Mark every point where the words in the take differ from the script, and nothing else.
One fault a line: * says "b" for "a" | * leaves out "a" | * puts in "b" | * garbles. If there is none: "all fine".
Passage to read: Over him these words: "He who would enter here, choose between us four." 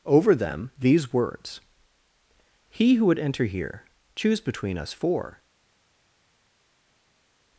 * says "them" for "him"